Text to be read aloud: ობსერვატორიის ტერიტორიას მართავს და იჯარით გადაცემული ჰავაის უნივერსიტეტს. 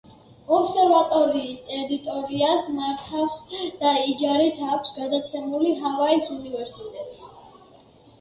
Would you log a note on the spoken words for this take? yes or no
yes